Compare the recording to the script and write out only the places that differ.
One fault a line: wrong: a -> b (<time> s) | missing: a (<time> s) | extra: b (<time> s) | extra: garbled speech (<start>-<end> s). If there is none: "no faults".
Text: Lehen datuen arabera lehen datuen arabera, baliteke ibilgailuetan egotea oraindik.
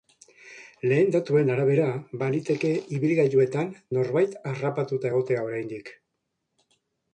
wrong: lehen datuen arabera baliteke ibilgailuetan -> baliteke ibilgailuetan norbait harrapatuta (2.2 s)